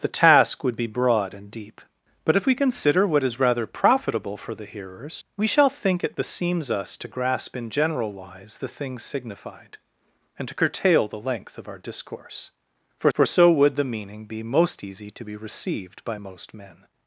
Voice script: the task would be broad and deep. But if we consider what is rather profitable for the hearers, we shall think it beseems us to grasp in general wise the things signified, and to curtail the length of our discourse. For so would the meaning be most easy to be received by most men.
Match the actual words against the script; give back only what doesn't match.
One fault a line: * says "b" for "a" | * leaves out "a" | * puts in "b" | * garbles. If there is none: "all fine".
* puts in "for"